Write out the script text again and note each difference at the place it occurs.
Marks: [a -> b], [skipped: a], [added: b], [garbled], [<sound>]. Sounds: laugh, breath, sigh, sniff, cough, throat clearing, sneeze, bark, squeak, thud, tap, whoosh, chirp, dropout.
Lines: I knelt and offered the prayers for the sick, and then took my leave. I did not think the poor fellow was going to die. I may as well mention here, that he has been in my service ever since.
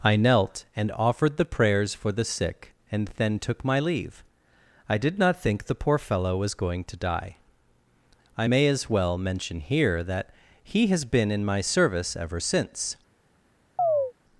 I knelt and offered the prayers for the sick, and then took my leave. I did not think the poor fellow was going to die. I may as well mention here, that he has been in my service ever since. [chirp]